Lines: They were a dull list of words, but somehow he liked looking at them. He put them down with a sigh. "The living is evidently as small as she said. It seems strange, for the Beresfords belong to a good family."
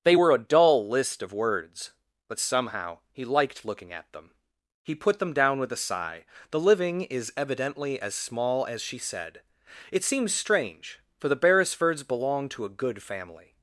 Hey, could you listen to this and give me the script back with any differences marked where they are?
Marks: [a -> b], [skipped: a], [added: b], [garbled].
They were a dull list of words, but somehow he liked looking at them. He put them down with a sigh. "The living is evidently as small as she said. It seems strange, for the Beresfords belong to a good family."